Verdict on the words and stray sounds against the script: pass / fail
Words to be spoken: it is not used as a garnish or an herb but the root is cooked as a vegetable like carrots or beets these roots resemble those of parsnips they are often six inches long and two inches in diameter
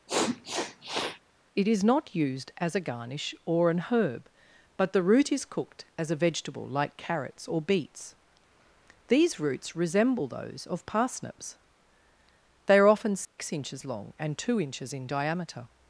fail